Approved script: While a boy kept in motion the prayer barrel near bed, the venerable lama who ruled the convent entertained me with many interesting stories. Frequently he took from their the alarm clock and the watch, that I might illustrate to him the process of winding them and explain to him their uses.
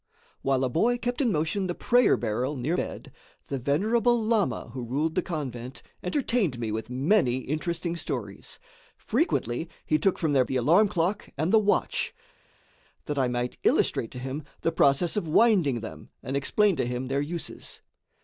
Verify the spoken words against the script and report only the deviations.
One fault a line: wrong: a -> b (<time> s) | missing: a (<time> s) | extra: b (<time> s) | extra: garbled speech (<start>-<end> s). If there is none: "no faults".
no faults